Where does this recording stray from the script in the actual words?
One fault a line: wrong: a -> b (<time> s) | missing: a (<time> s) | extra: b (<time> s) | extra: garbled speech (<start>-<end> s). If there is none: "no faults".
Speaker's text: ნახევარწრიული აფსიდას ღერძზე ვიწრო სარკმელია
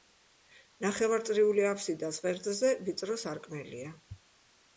no faults